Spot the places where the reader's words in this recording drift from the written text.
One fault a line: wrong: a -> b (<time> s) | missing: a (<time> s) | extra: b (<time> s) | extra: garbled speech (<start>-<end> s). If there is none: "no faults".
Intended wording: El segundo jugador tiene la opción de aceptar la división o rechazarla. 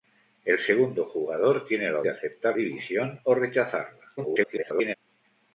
missing: opción (2.0 s)
missing: la (2.6 s)
extra: garbled speech (4.2-4.9 s)